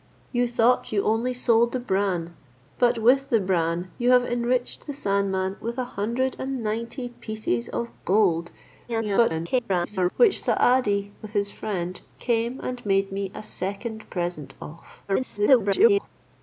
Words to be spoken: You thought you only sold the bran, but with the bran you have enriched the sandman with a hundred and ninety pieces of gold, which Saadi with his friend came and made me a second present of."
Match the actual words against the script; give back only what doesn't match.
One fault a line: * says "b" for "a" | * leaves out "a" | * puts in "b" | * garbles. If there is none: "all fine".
* garbles
* garbles